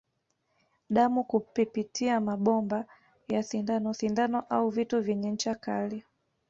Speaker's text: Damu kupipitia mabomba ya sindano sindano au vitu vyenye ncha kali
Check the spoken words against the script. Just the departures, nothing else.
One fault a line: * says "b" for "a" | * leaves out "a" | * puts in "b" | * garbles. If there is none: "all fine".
all fine